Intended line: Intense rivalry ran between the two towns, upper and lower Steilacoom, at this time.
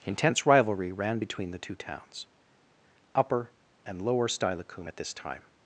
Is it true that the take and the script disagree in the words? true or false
false